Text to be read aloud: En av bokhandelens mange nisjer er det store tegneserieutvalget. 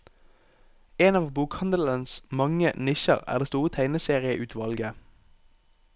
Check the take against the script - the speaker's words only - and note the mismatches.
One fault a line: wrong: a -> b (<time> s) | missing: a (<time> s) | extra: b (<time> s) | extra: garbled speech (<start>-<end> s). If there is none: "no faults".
no faults